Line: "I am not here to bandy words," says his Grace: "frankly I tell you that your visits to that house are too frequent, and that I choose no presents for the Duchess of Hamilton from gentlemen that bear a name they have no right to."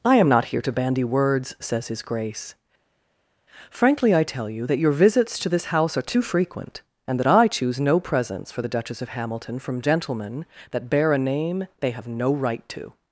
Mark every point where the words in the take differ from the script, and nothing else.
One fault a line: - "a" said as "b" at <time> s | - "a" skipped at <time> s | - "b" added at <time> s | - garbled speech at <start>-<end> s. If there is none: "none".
- "that" said as "this" at 5.5 s